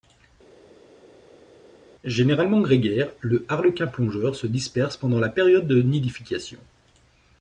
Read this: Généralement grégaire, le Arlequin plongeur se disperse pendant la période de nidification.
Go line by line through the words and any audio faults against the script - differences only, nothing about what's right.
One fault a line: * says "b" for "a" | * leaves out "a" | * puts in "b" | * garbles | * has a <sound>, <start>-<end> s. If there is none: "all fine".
all fine